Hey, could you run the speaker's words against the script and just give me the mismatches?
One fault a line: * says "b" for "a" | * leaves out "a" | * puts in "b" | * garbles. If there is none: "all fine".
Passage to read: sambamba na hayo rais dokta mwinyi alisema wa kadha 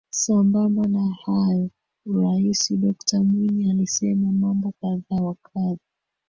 * puts in "mambo kadha"